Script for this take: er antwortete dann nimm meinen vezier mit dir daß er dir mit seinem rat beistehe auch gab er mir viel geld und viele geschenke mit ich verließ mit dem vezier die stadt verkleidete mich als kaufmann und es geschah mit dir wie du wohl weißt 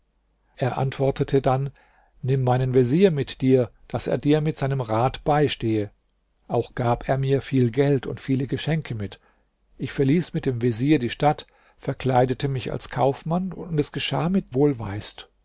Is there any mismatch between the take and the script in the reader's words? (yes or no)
yes